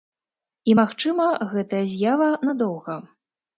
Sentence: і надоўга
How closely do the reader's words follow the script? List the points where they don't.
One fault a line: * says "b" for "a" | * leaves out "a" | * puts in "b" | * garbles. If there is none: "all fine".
* puts in "магчыма гэтая з'ява"